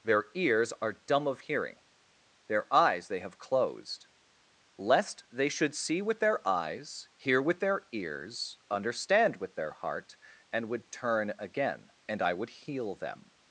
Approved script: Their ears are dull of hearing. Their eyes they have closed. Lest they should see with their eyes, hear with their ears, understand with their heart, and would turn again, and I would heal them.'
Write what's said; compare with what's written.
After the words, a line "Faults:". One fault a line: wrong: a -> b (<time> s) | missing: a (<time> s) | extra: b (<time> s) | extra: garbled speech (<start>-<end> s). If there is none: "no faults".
Their ears are dumb of hearing. Their eyes they have closed. Lest they should see with their eyes, hear with their ears, understand with their heart, and would turn again, and I would heal them.'
Faults:
wrong: dull -> dumb (0.9 s)